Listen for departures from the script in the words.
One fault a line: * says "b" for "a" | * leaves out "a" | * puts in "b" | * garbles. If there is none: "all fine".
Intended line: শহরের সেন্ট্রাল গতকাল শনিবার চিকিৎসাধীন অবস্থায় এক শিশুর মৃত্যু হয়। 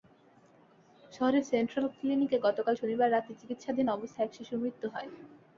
* puts in "ক্লিনিকে"
* puts in "রাতে"